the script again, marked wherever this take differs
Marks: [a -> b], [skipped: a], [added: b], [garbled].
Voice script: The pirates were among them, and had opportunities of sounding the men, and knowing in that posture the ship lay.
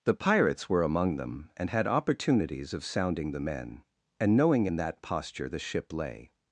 The pirates were among them, and had opportunities of sounding the men, and knowing in that posture the ship lay.